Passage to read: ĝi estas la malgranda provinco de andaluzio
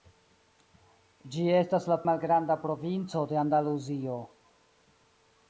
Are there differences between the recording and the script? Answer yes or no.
no